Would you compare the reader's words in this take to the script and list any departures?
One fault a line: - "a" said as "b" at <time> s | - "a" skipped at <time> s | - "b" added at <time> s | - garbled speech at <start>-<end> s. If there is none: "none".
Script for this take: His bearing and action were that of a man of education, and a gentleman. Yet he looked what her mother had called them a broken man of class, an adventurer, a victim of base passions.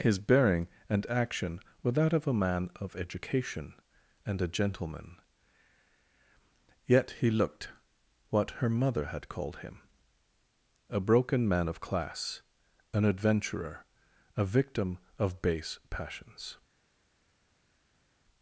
- "them" said as "him" at 9.6 s